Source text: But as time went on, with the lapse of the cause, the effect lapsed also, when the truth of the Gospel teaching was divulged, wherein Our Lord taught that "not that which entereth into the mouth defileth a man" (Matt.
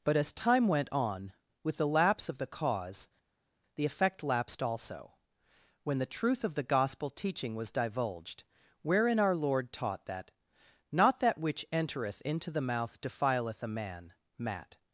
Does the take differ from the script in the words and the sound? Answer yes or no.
no